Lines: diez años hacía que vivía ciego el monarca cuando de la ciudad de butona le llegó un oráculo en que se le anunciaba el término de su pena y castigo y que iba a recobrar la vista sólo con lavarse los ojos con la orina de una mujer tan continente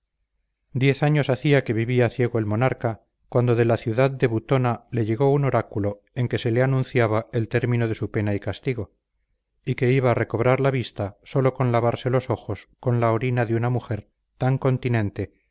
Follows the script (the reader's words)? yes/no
yes